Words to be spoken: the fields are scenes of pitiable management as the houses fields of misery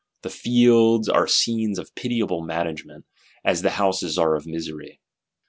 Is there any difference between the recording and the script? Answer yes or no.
yes